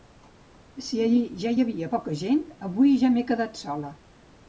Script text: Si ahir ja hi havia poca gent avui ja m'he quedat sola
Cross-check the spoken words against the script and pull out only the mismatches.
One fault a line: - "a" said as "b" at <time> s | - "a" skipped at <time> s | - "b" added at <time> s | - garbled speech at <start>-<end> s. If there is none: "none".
none